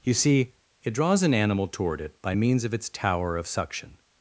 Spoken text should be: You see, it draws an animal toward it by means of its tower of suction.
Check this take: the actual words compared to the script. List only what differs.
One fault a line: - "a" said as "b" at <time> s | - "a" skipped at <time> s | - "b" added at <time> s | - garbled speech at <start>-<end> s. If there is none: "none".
none